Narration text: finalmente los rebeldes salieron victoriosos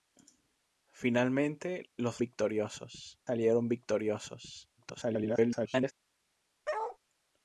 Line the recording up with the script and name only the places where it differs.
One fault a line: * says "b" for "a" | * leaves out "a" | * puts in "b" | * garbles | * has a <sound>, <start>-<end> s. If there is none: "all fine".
* says "victoriosos" for "rebeldes"
* garbles
* has a bark, 6.6-7.0 s